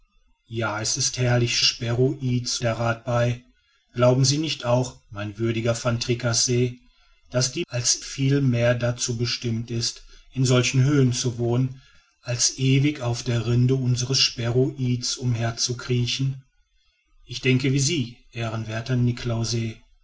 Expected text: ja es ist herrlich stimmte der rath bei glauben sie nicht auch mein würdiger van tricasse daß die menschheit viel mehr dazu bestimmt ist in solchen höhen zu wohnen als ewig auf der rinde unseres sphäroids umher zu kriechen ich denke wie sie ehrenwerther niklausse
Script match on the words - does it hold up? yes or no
no